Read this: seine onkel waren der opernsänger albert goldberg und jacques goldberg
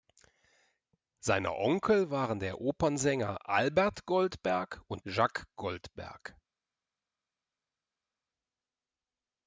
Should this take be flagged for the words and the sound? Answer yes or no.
no